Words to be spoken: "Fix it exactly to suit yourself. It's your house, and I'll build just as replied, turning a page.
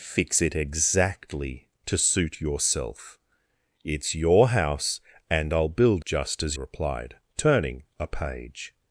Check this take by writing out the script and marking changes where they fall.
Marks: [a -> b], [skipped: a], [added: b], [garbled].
"Fix it exactly to suit yourself. It's your house, and I'll build just as replied, turning a page.